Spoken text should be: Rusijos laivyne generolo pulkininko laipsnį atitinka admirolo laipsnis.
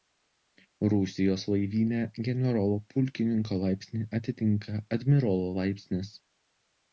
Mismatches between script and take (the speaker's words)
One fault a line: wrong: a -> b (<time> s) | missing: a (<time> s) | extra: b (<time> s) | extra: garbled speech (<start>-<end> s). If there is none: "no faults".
no faults